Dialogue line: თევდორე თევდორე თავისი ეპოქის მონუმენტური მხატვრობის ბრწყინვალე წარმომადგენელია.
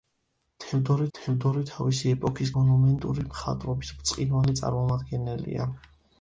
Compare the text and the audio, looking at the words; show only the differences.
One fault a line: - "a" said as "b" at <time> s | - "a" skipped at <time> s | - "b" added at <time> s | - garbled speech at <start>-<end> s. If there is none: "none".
none